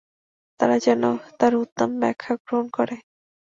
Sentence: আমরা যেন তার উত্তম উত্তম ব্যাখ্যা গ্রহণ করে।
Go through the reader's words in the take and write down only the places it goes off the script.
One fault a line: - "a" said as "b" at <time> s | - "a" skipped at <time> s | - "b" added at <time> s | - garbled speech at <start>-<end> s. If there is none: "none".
- "আমরা" said as "তারা" at 0.6 s
- "উত্তম" skipped at 1.9 s